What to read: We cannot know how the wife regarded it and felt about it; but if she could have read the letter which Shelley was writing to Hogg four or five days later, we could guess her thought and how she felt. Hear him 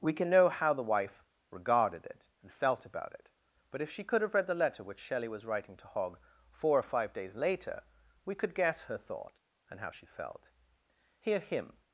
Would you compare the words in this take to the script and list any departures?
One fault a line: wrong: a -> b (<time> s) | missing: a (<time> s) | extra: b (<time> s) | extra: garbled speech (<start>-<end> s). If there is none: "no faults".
wrong: cannot -> can (0.1 s)